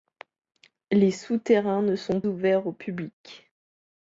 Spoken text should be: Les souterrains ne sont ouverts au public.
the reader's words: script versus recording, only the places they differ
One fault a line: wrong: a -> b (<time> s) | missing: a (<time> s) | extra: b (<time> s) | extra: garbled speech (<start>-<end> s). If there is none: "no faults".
no faults